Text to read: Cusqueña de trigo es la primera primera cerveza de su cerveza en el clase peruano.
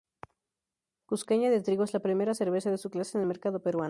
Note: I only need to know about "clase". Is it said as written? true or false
false